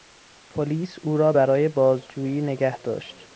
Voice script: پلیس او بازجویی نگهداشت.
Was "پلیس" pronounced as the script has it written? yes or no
yes